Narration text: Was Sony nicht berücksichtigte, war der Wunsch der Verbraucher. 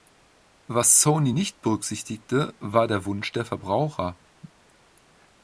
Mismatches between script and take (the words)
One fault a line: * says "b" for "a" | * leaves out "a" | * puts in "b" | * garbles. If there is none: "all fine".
all fine